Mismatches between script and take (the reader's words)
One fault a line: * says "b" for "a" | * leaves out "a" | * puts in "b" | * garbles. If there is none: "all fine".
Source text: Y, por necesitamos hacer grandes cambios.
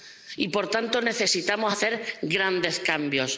* puts in "tanto"